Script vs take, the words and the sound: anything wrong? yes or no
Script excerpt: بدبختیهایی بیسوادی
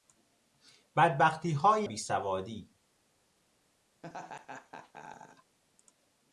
yes